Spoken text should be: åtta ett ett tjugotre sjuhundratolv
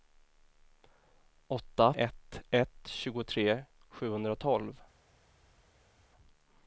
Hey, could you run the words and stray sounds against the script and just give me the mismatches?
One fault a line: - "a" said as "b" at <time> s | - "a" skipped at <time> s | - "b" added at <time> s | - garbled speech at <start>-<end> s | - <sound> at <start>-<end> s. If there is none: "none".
none